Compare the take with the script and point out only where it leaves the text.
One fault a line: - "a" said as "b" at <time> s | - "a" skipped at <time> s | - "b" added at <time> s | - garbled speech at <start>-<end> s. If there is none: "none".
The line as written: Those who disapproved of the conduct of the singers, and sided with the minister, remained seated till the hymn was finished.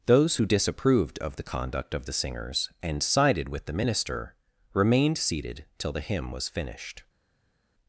none